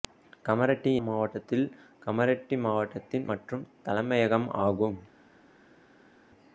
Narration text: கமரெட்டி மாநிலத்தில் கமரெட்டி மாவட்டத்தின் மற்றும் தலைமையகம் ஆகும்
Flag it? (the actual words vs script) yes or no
no